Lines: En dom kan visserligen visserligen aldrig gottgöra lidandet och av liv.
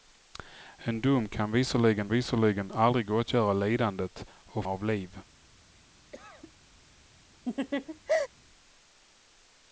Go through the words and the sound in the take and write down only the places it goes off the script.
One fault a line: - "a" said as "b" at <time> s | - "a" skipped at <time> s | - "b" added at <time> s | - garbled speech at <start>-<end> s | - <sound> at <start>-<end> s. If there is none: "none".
- cough at 6.1-6.5 s
- laugh at 7.4-8.3 s